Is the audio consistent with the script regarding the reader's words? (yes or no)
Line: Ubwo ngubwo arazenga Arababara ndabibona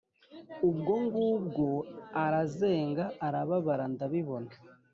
yes